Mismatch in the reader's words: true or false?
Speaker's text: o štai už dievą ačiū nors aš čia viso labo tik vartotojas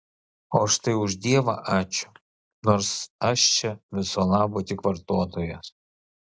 false